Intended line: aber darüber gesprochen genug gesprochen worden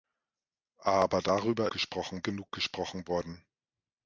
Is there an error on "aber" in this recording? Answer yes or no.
no